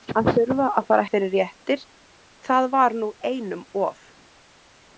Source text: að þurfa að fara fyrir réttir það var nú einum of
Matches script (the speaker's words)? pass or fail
pass